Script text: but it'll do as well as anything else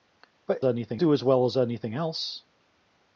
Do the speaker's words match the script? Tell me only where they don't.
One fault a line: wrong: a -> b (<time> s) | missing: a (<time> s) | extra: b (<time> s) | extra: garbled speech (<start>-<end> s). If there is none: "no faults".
wrong: it'll -> anything (0.6 s)